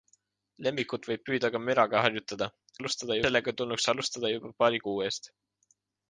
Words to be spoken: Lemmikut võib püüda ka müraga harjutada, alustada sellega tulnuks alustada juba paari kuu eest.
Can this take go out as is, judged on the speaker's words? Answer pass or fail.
pass